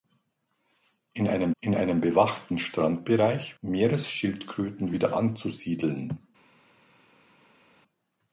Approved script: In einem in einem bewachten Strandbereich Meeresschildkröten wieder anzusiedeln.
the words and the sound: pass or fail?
pass